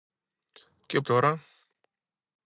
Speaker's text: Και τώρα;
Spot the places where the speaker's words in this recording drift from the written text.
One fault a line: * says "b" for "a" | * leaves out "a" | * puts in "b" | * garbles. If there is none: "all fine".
all fine